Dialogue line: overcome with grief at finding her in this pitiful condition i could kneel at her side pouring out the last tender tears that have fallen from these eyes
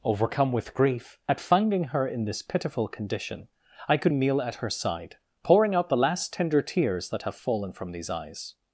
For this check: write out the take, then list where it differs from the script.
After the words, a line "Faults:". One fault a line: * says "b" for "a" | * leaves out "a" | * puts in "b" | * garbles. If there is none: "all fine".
overcome with grief at finding her in this pitiful condition i could kneel at her side pouring out the last tender tears that have fallen from these eyes
Faults:
all fine